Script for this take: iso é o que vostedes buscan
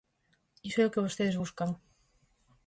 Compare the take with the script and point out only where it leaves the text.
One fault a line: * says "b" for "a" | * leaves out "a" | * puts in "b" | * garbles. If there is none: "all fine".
all fine